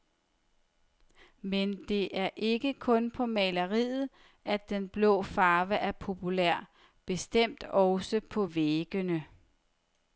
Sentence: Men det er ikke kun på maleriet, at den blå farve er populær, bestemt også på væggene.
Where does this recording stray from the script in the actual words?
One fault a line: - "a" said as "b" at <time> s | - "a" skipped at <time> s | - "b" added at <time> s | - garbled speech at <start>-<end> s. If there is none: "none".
none